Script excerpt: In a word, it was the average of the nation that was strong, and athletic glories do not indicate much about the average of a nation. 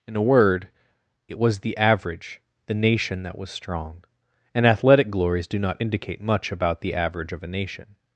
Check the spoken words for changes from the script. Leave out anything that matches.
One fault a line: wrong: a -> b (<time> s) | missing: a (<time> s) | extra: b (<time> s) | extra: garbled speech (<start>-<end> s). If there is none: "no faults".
missing: of (2.4 s)